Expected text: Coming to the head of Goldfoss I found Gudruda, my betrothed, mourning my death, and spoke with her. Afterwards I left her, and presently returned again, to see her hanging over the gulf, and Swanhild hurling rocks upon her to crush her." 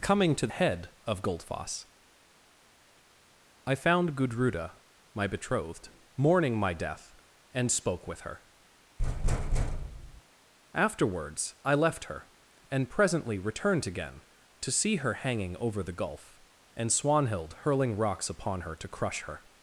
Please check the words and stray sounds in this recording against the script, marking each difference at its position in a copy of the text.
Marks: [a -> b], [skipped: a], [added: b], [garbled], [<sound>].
Coming to [skipped: the] head of Goldfoss I found Gudruda, my betrothed, mourning my death, and spoke with her. [thud] Afterwards I left her, and presently returned again, to see her hanging over the gulf, and Swanhild hurling rocks upon her to crush her."